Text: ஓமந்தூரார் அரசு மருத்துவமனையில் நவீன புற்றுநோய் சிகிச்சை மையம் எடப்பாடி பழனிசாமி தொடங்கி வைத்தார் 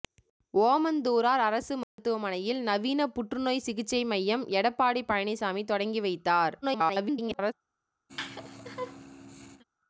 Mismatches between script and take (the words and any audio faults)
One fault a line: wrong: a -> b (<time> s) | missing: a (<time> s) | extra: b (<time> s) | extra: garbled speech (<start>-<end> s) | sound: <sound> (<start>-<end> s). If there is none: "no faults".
sound: dropout (1.8-2.0 s)
extra: garbled speech (6.6-7.5 s)
sound: laugh (8.1-9.6 s)